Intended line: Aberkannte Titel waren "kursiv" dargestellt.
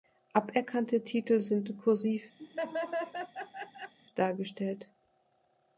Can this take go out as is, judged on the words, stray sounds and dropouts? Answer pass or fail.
fail